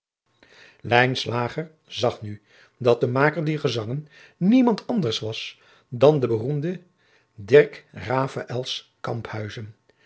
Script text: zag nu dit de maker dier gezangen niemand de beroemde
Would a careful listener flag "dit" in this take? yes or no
yes